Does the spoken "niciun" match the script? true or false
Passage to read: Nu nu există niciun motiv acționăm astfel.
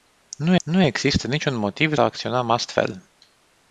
true